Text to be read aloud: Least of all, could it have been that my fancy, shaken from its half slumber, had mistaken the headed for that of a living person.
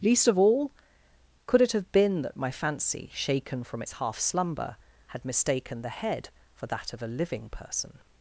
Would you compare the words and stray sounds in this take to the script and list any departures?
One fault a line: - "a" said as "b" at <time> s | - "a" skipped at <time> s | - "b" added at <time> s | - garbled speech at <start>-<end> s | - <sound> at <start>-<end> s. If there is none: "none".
- "headed" said as "head" at 5.9 s